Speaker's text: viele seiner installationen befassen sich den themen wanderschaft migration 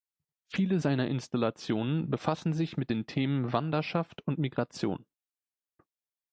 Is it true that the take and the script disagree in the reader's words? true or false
true